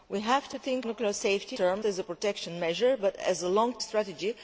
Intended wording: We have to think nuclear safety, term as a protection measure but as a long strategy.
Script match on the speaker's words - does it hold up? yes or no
yes